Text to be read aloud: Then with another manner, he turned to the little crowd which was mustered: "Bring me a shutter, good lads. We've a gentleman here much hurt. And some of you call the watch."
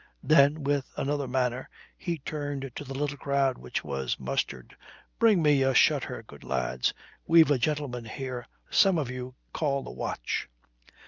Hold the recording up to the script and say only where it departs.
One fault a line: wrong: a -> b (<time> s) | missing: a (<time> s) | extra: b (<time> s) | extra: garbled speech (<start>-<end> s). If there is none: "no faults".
missing: much hurt And (8.5 s)